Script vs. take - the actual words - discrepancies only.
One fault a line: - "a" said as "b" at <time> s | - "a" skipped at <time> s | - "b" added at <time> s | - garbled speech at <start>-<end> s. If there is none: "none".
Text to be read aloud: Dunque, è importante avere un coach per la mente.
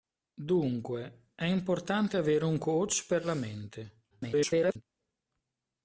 - garbled speech at 4.1-4.8 s